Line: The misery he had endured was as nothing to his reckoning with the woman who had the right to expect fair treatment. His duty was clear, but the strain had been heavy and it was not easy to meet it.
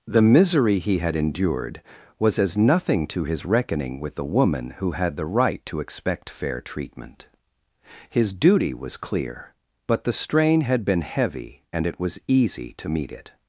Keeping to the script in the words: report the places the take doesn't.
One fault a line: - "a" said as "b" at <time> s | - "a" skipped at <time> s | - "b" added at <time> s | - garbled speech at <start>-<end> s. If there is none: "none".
- "not" skipped at 12.2 s